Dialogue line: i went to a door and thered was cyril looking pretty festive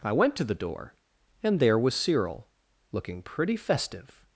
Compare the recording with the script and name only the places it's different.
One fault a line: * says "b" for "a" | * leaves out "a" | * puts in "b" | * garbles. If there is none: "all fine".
* says "the" for "a"
* says "there" for "thered"